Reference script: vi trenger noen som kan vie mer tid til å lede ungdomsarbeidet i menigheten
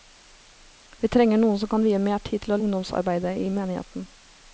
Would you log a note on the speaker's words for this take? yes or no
yes